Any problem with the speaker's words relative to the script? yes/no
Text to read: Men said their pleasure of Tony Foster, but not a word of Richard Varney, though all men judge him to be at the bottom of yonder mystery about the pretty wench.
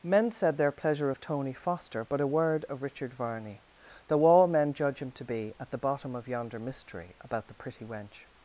yes